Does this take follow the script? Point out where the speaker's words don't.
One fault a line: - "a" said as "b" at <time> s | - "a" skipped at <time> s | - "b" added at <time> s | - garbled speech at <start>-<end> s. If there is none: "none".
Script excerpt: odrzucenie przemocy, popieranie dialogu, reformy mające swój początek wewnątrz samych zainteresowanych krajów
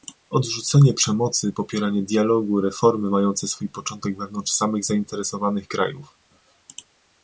none